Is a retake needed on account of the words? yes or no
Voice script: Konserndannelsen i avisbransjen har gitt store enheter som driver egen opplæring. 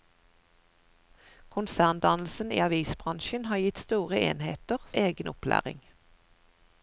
yes